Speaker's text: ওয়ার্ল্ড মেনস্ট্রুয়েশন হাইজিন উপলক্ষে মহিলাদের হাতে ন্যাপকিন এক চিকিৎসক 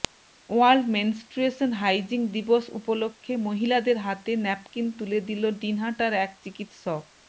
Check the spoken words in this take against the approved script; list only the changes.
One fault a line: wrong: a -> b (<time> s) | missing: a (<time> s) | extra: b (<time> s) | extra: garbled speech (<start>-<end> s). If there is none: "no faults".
extra: দিবস (2.4 s)
extra: তুলে দিল দিনহাটার (5.0 s)